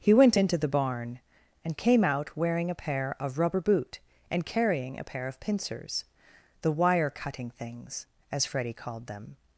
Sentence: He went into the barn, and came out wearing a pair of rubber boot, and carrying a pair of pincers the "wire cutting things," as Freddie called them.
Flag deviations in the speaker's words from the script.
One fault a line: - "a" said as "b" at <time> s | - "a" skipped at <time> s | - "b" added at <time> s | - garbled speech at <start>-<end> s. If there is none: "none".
none